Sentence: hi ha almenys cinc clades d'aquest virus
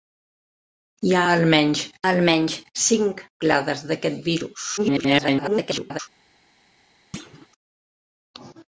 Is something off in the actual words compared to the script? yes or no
yes